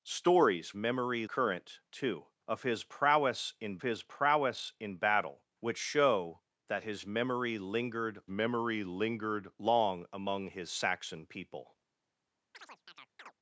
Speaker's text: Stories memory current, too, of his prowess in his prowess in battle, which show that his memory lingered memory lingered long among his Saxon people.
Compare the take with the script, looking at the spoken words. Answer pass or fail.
pass